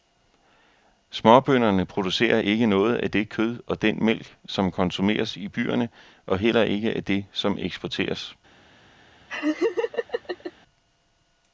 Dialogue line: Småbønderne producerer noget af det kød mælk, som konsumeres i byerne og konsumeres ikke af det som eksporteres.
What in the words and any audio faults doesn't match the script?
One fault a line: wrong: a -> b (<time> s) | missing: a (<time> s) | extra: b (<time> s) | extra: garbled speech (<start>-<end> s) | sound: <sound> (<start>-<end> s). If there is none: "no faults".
extra: ikke (2.4 s)
extra: og den (3.7 s)
wrong: konsumeres -> heller (6.4 s)
sound: laugh (9.3-10.5 s)